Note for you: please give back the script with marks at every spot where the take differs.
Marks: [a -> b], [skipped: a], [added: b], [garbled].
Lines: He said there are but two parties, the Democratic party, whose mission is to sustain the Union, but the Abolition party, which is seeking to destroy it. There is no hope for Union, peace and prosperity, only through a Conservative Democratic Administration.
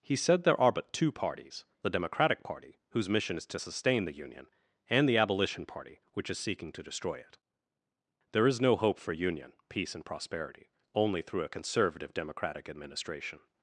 He said there are but two parties, the Democratic party, whose mission is to sustain the Union, [but -> and] the Abolition party, which is seeking to destroy it. There is no hope for Union, peace and prosperity, only through a Conservative Democratic Administration.